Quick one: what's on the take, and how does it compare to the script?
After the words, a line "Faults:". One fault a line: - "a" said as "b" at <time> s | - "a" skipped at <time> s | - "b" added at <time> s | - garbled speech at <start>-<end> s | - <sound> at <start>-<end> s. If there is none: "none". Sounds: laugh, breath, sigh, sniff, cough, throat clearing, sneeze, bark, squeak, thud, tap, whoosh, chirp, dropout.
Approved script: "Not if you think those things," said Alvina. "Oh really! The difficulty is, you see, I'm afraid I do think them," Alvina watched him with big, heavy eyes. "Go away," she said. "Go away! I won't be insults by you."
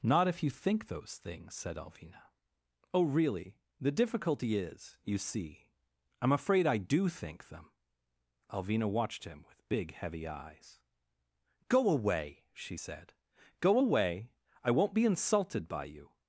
"Not if you think those things," said Alvina. "Oh really! The difficulty is, you see, I'm afraid I do think them," Alvina watched him with big, heavy eyes. "Go away," she said. "Go away! I won't be insulted by you."
Faults:
- "insults" said as "insulted" at 15.0 s